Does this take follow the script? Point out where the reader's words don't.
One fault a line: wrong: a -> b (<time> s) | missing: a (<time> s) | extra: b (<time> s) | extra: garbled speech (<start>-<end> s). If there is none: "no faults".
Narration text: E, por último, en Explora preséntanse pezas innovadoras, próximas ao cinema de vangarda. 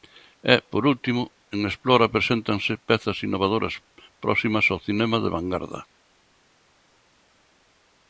no faults